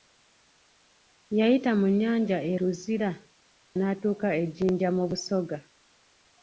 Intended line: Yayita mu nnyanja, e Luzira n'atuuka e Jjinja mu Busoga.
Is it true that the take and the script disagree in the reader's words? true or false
false